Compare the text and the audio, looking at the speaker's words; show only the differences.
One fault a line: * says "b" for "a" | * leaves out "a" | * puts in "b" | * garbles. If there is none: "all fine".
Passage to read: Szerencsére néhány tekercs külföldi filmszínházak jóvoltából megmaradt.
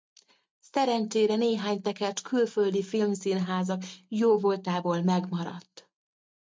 all fine